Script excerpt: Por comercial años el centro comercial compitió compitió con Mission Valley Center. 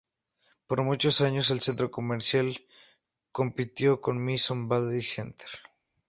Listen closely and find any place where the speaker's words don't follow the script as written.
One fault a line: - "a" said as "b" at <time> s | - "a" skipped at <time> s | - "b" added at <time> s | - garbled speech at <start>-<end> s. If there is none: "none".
- "comercial" said as "muchos" at 0.8 s
- "compitió" skipped at 4.0 s